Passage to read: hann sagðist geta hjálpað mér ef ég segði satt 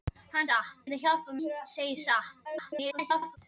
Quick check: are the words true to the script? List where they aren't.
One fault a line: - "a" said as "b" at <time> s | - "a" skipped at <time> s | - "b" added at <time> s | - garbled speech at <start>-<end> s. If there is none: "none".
- "sagðist" said as "satt" at 0.5 s
- "mér ef" skipped at 1.4 s
- garbled speech at 2.4-3.4 s